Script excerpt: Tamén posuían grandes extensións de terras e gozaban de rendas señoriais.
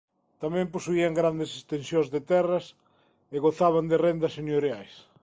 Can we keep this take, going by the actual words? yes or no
yes